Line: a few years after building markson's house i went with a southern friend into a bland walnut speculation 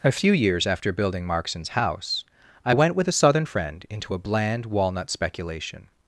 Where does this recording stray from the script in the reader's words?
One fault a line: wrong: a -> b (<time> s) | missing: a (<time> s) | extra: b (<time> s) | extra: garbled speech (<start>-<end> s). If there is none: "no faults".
no faults